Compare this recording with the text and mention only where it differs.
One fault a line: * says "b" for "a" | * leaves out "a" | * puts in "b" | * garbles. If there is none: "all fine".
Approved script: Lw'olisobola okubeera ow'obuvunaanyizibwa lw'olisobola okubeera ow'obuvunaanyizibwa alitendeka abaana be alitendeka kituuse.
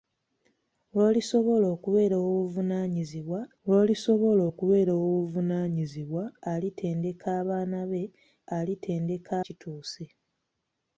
all fine